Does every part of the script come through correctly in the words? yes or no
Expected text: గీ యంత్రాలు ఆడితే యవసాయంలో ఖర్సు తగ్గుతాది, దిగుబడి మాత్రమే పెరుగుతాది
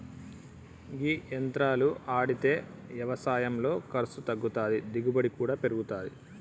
no